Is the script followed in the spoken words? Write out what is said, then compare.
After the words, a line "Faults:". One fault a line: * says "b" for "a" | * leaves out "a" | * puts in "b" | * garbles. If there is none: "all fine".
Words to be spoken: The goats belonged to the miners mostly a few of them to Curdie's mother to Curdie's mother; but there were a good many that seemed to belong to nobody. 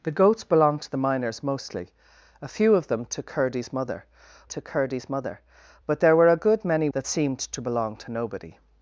The goats belonged to the miners mostly a few of them to Curdie's mother to Curdie's mother; but there were a good many that seemed to belong to nobody.
Faults:
all fine